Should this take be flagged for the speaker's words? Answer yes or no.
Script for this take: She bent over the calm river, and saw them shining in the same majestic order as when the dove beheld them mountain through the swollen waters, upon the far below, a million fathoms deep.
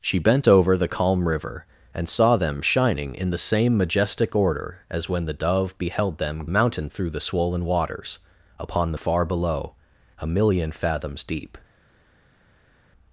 no